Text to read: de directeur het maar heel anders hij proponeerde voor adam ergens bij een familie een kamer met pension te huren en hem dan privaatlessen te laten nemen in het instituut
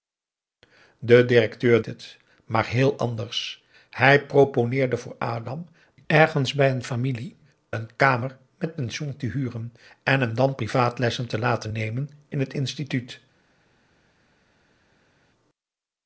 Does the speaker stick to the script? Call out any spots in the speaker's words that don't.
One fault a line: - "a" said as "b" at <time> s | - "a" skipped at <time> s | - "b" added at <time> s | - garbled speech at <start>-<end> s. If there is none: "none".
none